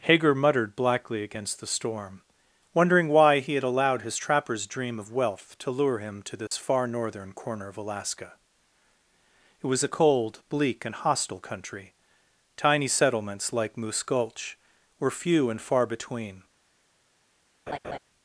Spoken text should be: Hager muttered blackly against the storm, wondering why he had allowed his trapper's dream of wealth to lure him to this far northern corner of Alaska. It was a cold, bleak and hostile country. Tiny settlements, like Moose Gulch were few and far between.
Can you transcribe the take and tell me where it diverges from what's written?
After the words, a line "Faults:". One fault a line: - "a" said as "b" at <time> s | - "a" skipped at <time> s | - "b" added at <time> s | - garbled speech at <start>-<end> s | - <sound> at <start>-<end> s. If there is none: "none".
Hager muttered blackly against the storm, wondering why he had allowed his trapper's dream of wealth to lure him to this far northern corner of Alaska. It was a cold, bleak and hostile country. Tiny settlements, like Moose Gulch were few and far between.
Faults:
- dropout at 6.5-6.5 s
- laugh at 17.7-18.0 s